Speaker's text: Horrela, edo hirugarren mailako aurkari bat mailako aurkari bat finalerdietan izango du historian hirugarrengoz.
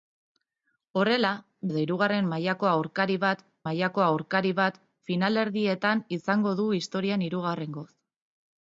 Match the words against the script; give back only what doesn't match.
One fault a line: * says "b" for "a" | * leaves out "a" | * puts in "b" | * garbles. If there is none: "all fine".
all fine